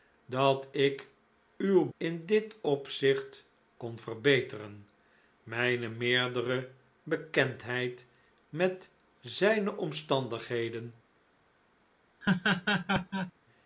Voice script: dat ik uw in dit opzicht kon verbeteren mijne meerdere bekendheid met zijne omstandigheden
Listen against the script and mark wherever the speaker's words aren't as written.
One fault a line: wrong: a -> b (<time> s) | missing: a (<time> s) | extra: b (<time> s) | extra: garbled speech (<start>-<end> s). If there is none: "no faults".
no faults